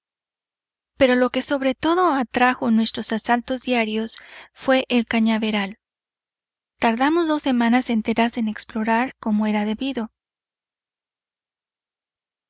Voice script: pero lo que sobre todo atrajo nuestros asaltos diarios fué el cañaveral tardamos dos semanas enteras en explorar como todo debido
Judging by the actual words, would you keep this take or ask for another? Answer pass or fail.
fail